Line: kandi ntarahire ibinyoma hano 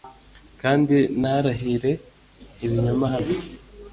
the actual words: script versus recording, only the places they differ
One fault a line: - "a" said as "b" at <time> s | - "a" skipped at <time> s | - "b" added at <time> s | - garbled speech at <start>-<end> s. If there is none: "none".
none